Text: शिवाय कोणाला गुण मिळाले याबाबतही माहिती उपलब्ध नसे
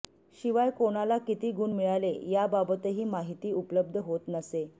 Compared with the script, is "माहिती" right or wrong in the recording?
right